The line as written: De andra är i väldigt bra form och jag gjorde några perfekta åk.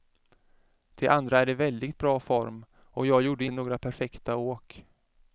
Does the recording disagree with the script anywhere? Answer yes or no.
no